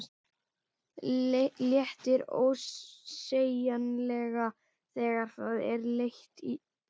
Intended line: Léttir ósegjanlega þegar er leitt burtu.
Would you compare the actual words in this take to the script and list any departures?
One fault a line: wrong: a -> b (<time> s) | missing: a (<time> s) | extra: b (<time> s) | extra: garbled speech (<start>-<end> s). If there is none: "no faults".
extra: það (5.4 s)
extra: í (6.4 s)